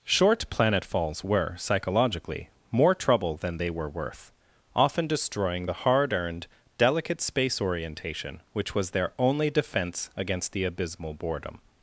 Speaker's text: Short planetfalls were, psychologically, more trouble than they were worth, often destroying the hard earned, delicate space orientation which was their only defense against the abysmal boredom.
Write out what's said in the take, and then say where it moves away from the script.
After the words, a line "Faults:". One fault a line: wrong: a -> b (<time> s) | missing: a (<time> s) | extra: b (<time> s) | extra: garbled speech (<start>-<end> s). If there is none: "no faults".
Short planetfalls were, psychologically, more trouble than they were worth, often destroying the hard earned, delicate space orientation which was their only defense against the abysmal boredom.
Faults:
no faults